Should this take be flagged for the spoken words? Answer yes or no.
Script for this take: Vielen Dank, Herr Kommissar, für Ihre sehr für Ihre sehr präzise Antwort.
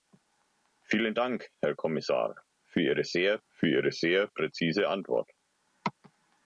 no